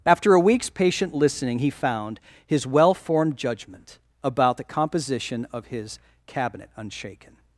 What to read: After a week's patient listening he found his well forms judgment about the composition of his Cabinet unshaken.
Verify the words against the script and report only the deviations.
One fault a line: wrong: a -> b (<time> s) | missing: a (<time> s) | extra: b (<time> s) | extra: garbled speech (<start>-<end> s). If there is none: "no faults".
wrong: forms -> formed (2.9 s)